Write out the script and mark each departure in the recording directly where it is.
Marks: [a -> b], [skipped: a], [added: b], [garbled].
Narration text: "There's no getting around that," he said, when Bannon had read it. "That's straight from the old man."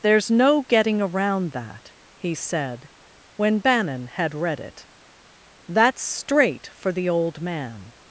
"There's no getting around that," he said, when Bannon had read it. "That's straight [from -> for] the old man."